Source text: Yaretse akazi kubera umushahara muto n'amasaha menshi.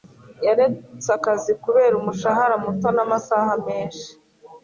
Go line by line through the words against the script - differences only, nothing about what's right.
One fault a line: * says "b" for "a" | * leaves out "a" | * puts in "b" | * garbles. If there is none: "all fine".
all fine